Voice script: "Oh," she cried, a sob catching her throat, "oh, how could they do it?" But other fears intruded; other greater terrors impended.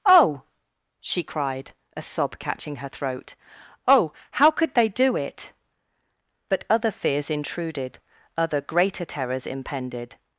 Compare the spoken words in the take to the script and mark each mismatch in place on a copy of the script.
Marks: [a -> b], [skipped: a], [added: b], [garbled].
"Oh," she cried, a sob catching her throat, "oh, how could they do it?" But other fears intruded; other greater terrors impended.